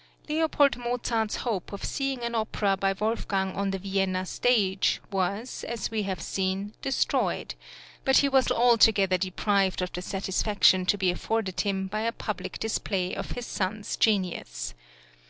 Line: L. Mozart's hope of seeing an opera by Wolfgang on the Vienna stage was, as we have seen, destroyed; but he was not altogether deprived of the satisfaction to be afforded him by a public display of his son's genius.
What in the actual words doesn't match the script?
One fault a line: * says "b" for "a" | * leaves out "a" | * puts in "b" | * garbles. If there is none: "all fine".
* leaves out "not"